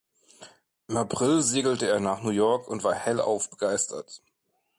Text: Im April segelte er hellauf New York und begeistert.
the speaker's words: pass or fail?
fail